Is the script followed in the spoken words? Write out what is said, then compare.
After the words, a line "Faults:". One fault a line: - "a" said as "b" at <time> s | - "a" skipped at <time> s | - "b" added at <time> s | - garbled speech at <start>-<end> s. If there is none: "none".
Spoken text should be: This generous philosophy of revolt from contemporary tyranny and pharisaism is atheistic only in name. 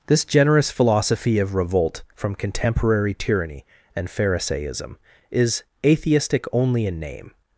This generous philosophy of revolt from contemporary tyranny and pharisaism is atheistic only in name.
Faults:
none